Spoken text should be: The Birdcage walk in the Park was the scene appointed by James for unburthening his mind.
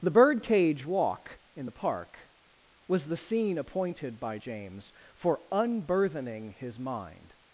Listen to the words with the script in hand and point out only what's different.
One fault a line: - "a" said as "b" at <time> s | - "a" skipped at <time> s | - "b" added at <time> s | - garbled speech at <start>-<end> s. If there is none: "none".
none